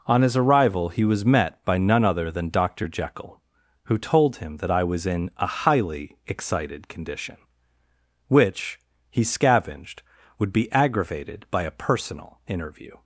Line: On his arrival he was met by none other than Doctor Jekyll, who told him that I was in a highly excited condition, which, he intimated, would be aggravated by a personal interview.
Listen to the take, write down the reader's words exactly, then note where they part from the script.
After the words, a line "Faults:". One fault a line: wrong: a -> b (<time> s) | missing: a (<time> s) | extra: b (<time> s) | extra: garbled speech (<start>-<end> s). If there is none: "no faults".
On his arrival he was met by none other than Doctor Jekyll, who told him that I was in a highly excited condition, which, he scavenged, would be aggravated by a personal interview.
Faults:
wrong: intimated -> scavenged (9.2 s)